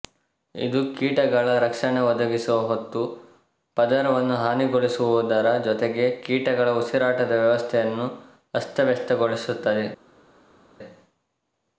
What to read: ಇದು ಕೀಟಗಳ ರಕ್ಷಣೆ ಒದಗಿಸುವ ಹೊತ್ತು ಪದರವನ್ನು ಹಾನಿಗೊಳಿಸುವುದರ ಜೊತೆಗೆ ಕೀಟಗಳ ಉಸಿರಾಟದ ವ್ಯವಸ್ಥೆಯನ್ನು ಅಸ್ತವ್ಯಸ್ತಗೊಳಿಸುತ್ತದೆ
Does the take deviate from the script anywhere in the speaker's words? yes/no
no